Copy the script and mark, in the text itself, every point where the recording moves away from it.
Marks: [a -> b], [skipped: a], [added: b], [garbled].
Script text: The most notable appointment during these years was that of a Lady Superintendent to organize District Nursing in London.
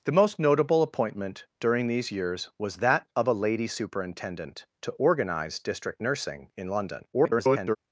The most notable appointment during these years was that of a Lady Superintendent to organize District Nursing in London. [garbled]